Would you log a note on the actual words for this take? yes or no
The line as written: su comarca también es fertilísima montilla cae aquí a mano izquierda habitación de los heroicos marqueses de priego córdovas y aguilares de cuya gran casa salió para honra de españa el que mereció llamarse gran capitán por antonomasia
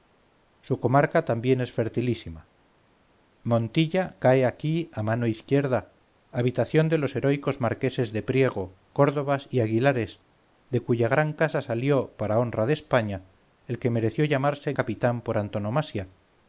yes